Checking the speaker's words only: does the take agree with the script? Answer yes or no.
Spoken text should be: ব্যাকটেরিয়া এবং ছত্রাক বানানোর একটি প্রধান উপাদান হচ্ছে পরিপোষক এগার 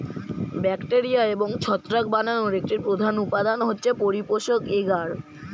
yes